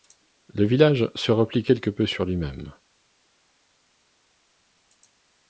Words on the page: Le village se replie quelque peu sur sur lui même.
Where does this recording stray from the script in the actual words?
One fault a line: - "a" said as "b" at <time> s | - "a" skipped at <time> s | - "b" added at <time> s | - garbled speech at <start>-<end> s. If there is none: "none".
- "sur" skipped at 2.2 s